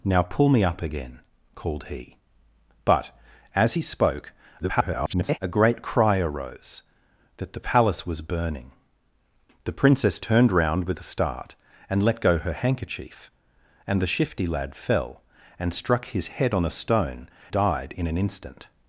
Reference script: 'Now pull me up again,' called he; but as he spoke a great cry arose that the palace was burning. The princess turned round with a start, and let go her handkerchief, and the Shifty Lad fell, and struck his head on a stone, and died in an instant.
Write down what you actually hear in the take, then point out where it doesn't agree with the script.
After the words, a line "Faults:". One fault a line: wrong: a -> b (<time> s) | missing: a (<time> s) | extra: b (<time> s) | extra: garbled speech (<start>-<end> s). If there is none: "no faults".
'Now pull me up again,' called he; but as he spoke [garbled] a great cry arose that the palace was burning. The princess turned round with a start, and let go her handkerchief, and the Shifty Lad fell, and struck his head on a stone, died in an instant.
Faults:
extra: garbled speech (4.6-5.4 s)
missing: and (17.3 s)